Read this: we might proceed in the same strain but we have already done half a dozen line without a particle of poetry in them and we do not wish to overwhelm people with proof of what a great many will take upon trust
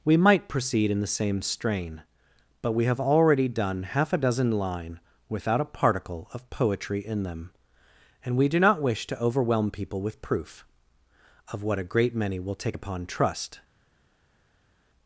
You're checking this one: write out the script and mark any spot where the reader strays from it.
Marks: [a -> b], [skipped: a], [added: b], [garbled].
we might proceed in the same strain but we have already done half a dozen line without a particle of poetry in them and we do not wish to overwhelm people with proof of what a great many will take upon trust